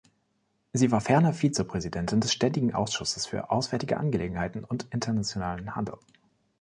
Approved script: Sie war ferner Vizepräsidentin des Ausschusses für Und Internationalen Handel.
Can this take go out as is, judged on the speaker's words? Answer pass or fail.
fail